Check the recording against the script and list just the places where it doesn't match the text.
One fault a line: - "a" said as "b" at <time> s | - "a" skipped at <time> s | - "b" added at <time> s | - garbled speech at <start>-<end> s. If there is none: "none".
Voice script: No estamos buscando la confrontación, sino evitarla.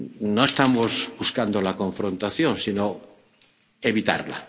none